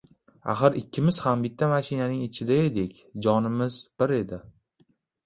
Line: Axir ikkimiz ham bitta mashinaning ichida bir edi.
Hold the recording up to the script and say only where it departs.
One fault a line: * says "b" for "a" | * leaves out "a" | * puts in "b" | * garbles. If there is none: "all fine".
* puts in "edik jonimiz"